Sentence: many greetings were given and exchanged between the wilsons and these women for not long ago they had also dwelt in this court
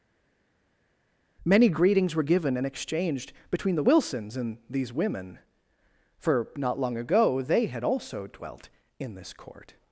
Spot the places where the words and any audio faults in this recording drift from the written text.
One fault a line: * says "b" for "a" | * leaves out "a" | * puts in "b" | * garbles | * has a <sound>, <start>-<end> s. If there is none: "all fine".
all fine